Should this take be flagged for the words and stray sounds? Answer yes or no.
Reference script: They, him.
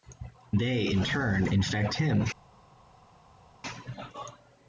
yes